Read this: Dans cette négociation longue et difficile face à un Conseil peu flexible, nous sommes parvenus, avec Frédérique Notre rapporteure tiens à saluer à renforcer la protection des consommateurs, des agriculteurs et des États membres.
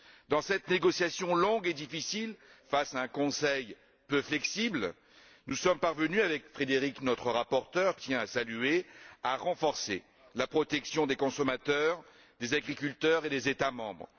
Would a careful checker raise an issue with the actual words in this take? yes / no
no